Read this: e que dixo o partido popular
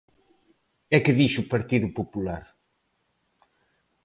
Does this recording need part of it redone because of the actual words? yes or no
no